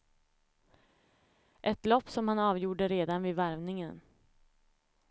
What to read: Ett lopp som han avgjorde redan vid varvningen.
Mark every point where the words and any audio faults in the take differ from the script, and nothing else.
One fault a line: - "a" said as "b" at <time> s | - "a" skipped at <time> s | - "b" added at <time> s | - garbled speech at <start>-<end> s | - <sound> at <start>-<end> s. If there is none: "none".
none